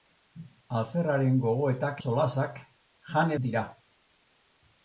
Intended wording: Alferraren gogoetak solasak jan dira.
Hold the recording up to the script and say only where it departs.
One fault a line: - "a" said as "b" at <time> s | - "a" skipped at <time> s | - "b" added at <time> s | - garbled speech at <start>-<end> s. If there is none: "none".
none